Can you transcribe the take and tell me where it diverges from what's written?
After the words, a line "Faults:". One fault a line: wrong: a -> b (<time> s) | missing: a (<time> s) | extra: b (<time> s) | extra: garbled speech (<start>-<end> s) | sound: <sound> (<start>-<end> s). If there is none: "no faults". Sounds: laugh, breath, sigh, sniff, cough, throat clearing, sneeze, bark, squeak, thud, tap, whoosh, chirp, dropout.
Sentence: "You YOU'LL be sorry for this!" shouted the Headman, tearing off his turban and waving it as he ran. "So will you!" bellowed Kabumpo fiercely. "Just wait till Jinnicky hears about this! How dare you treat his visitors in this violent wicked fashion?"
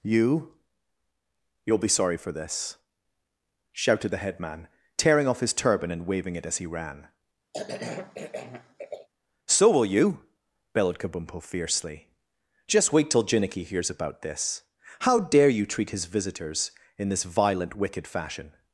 "You YOU'LL be sorry for this!" shouted the Headman, tearing off his turban and waving it as he ran. "So will you!" bellowed Kabumpo fiercely. "Just wait till Jinnicky hears about this! How dare you treat his visitors in this violent wicked fashion?"
Faults:
sound: cough (7.5-9.1 s)